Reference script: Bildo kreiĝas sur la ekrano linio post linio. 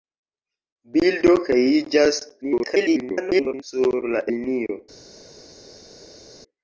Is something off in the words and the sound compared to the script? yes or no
yes